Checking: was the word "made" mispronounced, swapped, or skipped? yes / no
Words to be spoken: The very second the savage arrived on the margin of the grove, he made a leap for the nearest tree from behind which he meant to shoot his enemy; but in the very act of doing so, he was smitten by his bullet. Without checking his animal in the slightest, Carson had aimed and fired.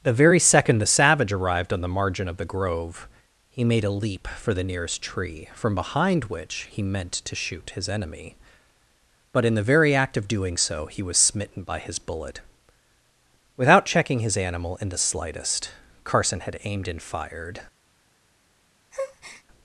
no